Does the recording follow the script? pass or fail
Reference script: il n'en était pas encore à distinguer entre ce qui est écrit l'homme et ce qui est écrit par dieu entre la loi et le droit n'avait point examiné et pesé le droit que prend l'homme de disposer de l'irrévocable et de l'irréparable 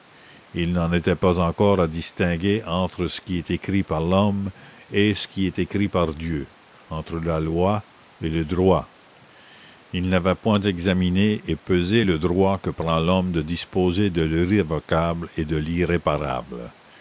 fail